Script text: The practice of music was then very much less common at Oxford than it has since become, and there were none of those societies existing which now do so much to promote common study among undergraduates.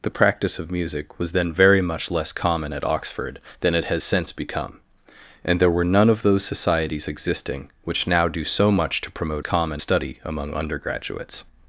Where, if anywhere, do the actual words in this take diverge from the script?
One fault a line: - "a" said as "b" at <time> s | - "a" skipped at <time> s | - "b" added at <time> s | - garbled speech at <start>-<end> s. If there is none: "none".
none